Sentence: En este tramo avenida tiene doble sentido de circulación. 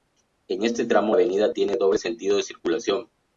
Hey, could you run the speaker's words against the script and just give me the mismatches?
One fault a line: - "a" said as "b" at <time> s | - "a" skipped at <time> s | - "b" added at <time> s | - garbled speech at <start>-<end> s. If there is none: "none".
none